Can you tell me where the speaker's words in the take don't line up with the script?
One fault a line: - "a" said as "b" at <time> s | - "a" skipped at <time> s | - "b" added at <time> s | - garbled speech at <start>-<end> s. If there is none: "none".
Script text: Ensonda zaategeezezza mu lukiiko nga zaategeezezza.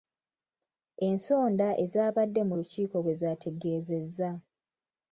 - "zaategeezezza" said as "ezaabadde" at 1.8 s
- "nga" said as "bwe" at 3.0 s